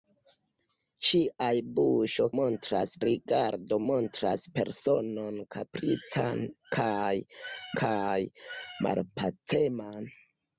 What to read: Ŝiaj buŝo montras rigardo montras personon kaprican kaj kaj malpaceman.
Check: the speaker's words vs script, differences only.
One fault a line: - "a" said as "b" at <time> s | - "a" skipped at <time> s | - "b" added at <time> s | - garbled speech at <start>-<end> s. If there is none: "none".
none